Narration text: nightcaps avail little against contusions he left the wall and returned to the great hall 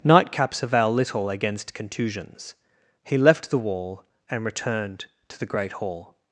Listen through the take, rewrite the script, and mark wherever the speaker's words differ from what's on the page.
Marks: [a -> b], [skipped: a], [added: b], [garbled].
nightcaps avail little against contusions he left the wall and returned to the great hall